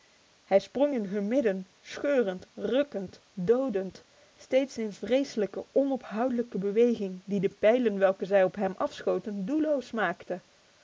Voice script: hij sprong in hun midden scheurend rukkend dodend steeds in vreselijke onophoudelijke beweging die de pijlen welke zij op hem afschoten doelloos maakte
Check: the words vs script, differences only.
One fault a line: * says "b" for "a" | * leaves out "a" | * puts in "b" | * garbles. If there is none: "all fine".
all fine